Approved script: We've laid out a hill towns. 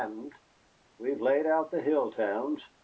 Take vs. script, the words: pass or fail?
fail